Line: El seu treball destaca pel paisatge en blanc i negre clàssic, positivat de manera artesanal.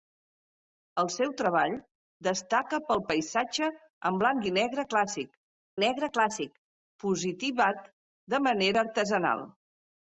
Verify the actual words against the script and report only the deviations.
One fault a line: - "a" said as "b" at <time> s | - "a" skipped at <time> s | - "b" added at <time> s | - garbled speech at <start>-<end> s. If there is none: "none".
- "negre clàssic" added at 5.8 s